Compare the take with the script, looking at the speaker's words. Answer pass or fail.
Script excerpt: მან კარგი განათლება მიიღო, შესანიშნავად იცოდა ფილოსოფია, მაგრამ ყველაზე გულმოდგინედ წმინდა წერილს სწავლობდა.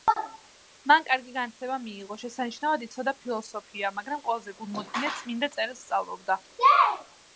pass